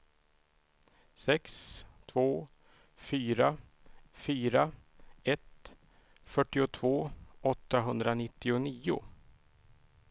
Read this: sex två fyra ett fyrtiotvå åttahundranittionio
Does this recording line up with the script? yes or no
no